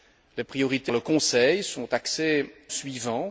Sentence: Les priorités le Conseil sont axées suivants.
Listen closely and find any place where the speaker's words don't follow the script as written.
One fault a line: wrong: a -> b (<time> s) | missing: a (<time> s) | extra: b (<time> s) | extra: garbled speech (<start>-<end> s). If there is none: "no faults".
no faults